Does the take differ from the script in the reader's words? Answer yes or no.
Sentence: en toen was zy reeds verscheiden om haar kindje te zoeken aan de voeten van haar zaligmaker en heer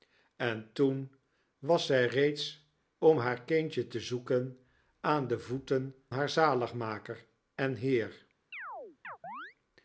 yes